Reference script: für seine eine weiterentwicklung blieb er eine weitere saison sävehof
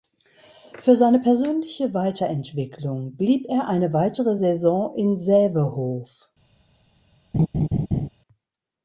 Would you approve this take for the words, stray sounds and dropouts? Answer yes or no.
no